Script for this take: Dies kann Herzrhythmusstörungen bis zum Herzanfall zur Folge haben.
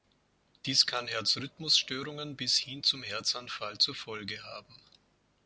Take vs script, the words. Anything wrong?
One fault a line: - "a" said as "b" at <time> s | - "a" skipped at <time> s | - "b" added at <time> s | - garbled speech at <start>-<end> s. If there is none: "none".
- "hin" added at 2.6 s